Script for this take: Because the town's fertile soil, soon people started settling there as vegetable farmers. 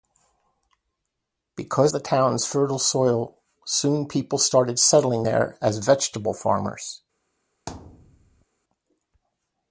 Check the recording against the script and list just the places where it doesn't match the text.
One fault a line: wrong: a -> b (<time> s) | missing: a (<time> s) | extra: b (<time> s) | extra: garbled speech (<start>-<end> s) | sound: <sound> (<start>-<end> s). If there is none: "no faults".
sound: thud (7.7-8.5 s)